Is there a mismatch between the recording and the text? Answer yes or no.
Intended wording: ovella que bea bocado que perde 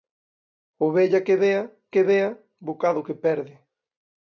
yes